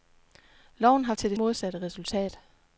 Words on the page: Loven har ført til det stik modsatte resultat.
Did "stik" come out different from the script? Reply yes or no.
yes